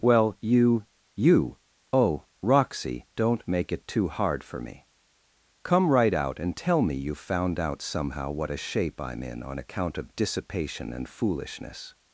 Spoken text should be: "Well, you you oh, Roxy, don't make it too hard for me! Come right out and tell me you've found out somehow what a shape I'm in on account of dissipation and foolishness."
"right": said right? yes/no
yes